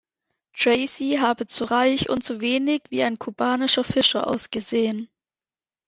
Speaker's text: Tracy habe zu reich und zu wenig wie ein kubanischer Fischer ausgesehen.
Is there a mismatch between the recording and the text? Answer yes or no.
no